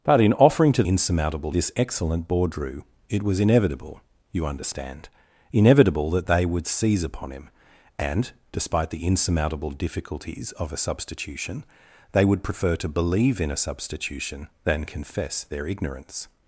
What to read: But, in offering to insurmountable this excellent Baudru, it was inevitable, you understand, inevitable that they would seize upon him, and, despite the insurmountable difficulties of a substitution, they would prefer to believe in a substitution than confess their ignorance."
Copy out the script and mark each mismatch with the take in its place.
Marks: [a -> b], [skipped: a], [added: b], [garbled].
But, in offering to insurmountable this excellent Baudru, it was inevitable, you understand, inevitable that they would seize upon him, and, despite the insurmountable difficulties of a substitution, they would prefer to believe in a substitution than confess their ignorance."